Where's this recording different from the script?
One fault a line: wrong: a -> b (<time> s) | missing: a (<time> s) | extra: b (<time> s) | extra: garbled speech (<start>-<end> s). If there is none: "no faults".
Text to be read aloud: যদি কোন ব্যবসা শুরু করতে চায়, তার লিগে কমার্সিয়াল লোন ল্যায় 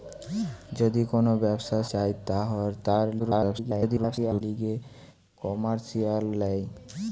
missing: শুরু করতে (1.8 s)
extra: garbled speech (3.2-4.4 s)
missing: লোন (6.2 s)